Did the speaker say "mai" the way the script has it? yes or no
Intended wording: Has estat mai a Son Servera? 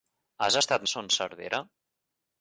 no